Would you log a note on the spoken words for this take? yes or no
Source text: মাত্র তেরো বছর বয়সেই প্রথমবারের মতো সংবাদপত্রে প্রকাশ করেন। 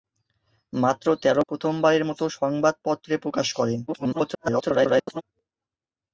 yes